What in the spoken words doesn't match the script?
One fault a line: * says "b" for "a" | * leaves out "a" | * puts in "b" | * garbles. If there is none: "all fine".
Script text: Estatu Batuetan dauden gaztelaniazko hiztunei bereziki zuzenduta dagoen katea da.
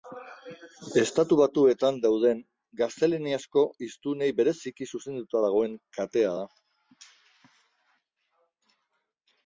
all fine